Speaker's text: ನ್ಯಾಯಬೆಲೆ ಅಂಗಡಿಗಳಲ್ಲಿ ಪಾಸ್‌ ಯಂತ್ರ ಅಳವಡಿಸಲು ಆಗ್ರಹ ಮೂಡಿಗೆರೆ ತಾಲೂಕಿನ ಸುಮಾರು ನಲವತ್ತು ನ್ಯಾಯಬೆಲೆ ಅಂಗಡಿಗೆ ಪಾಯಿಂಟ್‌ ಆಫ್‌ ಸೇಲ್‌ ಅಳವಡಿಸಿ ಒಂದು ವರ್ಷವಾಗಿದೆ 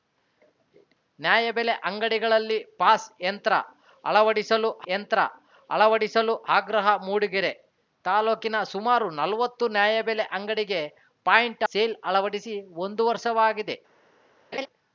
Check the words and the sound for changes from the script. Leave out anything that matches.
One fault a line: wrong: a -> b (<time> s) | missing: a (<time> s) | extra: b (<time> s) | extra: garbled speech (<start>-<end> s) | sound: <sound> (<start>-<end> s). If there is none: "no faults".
extra: ಯಂತ್ರ ಅಳವಡಿಸಲು (4.9 s)
missing: ಆಫ್ (11.7 s)
sound: laugh (14.5-14.7 s)